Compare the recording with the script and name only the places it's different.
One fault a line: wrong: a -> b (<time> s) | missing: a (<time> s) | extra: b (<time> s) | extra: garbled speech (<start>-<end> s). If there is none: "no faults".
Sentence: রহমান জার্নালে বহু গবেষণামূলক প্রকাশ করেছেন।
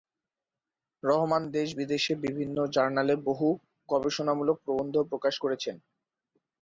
extra: দেশ বিদেশে বিভিন্ন (1.5 s)
extra: প্রবন্ধ (4.6 s)